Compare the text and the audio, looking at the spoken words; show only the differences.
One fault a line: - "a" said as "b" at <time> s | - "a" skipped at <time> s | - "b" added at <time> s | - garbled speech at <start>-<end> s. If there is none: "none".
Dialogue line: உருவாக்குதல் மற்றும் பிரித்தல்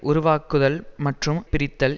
none